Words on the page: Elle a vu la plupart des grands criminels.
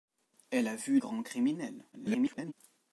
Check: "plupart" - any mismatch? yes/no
yes